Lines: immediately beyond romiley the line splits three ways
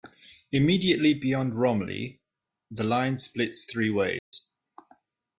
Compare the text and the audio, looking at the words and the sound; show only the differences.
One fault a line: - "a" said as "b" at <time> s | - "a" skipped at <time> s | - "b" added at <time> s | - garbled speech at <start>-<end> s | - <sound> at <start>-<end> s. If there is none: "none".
- dropout at 4.2-4.3 s